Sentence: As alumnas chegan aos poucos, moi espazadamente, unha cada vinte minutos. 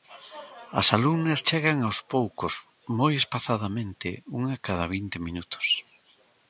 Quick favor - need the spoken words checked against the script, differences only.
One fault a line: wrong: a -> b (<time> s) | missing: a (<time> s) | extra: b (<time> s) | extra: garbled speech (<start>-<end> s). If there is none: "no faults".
no faults